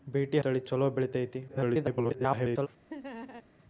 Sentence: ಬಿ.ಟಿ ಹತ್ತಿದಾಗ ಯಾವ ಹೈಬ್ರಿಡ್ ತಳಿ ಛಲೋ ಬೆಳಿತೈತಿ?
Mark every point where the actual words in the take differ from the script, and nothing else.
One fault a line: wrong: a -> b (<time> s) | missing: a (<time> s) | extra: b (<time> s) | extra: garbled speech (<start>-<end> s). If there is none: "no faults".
missing: ಹತ್ತಿದಾಗ ಯಾವ ಹೈಬ್ರಿಡ್ (0.4 s)
extra: garbled speech (1.5-2.7 s)